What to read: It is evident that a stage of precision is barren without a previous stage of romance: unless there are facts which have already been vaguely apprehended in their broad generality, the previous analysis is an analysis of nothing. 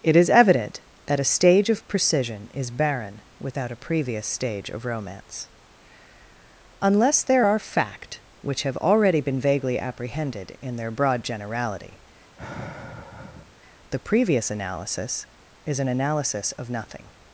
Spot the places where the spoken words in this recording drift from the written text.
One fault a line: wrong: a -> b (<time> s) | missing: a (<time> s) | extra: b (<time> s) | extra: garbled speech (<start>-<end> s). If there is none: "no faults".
wrong: facts -> fact (7.6 s)